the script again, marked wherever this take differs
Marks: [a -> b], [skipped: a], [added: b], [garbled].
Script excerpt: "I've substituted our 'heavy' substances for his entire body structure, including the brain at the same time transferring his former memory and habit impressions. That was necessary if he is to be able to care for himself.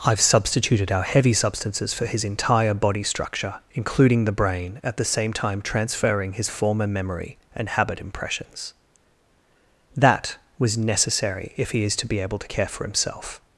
"I've substituted our 'heavy' substances for his entire body structure, including the brain at the same time transferring his former memory and habit impressions. That was necessary if he is to be able to care for himself.